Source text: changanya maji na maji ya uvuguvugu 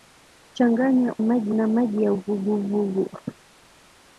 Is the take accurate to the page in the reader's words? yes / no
yes